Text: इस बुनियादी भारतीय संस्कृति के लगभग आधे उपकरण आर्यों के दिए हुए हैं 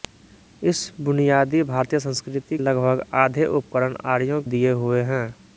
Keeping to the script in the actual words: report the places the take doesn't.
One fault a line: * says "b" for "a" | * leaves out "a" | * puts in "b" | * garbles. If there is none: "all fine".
* leaves out "के"
* leaves out "के"